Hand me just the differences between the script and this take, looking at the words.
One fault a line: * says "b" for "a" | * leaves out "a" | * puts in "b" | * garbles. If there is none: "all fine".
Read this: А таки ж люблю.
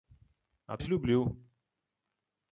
* leaves out "таки"